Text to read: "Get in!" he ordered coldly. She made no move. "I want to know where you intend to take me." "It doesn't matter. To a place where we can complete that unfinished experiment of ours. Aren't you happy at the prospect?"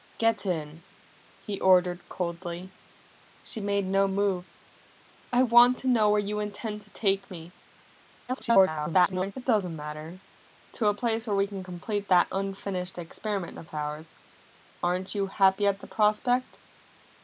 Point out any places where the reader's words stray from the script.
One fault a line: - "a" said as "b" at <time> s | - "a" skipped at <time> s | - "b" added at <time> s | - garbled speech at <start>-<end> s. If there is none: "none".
- garbled speech at 8.3-9.3 s